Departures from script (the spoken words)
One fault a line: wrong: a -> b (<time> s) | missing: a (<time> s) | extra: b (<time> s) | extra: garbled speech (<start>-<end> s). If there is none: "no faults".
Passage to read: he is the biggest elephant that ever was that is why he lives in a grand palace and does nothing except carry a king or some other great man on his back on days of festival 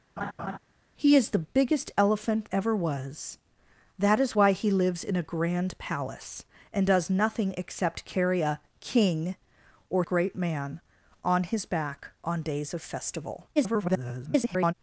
missing: that (2.5 s)
missing: some other (10.0 s)
extra: garbled speech (13.6-14.7 s)